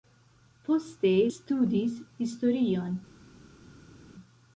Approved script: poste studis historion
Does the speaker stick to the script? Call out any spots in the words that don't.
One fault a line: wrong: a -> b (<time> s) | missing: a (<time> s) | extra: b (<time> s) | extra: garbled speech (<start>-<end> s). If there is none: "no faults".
no faults